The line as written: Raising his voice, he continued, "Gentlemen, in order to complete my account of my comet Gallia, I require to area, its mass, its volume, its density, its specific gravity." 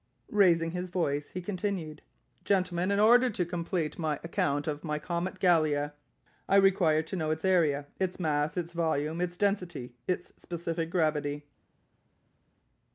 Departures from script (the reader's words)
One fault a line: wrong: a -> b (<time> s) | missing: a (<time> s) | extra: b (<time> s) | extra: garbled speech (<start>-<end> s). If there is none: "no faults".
extra: know its (7.2 s)